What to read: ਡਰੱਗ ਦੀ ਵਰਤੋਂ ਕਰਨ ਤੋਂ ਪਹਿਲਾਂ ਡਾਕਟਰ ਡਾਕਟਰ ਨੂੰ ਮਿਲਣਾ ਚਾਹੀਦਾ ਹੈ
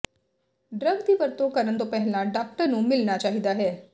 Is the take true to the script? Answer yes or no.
no